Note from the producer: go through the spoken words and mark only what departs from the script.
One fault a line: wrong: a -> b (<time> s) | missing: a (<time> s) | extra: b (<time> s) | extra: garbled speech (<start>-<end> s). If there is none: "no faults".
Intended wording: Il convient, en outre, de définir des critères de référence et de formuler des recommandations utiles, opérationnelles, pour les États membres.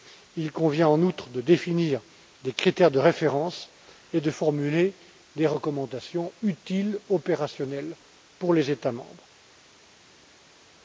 no faults